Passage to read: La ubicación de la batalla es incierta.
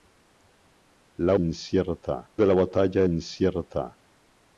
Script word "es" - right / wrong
wrong